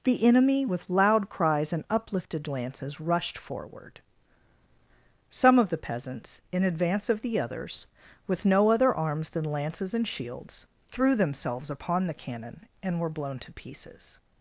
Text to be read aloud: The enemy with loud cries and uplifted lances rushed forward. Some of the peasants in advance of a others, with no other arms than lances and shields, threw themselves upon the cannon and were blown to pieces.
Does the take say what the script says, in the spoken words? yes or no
no